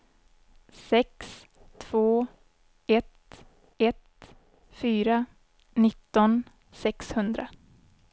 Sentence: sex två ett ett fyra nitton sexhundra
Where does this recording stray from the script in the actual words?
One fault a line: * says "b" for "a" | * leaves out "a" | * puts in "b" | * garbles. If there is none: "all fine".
all fine